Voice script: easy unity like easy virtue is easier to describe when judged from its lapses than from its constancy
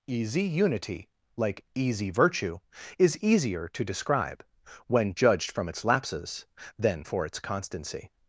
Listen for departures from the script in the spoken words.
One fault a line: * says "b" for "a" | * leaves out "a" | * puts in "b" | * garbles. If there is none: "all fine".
* says "for" for "from"